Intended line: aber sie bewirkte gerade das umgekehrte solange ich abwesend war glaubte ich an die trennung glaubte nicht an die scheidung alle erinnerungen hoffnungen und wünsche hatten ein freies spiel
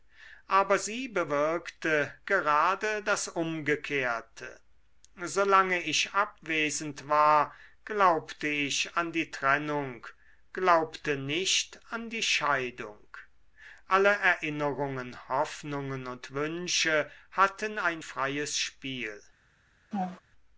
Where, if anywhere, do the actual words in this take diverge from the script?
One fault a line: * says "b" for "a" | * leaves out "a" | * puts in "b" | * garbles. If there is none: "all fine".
all fine